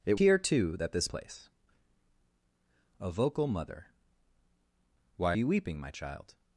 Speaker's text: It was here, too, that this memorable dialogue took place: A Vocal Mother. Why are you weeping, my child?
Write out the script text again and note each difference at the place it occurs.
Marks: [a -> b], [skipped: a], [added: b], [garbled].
It [skipped: was] here, too, that this [skipped: memorable dialogue took] place: A Vocal Mother. Why [skipped: are] you weeping, my child?